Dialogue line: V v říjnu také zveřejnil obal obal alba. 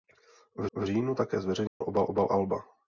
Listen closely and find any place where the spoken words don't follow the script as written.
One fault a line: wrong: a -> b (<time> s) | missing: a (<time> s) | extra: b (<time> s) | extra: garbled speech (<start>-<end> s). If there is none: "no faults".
no faults